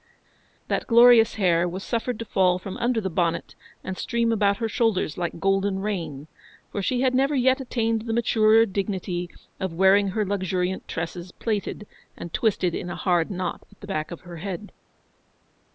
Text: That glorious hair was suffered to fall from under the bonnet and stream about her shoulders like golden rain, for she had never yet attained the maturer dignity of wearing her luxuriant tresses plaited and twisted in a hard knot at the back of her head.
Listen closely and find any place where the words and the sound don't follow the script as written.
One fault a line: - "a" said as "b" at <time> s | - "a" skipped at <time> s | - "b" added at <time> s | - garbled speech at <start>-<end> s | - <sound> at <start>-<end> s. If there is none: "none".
none